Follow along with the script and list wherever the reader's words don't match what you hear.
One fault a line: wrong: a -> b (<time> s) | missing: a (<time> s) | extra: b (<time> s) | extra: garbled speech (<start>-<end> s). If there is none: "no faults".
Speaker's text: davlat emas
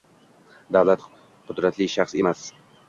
extra: qudratli shaxs (1.5 s)